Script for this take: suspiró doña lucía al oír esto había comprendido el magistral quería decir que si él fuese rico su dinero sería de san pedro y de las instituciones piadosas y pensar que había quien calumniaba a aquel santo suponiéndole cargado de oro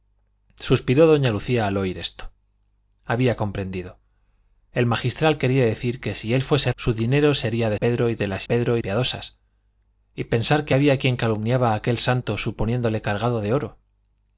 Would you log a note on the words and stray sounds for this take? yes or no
yes